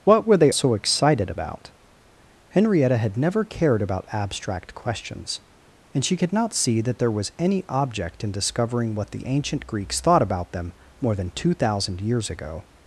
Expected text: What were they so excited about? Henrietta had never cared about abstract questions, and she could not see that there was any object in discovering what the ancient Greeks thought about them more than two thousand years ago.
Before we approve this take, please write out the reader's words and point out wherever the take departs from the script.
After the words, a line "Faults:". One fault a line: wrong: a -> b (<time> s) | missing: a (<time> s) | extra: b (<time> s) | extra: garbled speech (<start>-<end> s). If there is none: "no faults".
What were they so excited about? Henrietta had never cared about abstract questions, and she could not see that there was any object in discovering what the ancient Greeks thought about them more than two thousand years ago.
Faults:
no faults